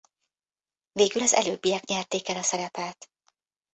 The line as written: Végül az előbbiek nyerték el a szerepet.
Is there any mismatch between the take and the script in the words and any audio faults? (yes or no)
no